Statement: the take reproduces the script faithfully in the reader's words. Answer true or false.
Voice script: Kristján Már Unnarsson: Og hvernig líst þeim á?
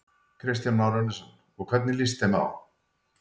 true